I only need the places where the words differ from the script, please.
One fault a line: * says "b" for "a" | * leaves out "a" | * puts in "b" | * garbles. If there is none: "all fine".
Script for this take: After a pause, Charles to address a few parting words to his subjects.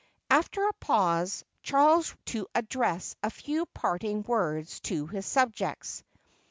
all fine